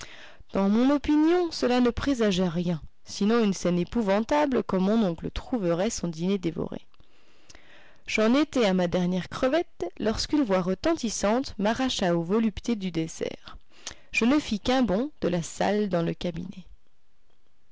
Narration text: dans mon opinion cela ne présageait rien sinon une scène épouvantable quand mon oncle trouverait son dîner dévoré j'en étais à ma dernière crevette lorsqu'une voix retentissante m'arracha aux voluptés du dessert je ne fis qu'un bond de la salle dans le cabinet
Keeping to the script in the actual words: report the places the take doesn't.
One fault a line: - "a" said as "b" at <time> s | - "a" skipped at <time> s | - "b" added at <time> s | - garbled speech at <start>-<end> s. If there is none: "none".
none